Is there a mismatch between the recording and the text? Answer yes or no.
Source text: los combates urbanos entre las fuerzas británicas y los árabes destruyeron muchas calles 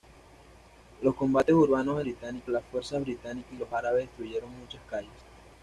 yes